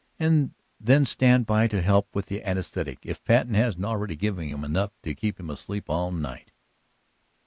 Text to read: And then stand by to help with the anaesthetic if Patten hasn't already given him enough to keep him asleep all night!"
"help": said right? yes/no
yes